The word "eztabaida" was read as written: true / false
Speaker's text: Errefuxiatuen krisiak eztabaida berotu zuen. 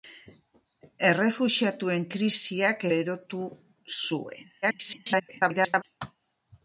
false